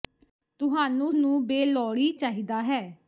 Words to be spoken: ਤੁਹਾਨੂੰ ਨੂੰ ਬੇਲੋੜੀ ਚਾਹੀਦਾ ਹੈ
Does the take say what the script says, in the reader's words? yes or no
yes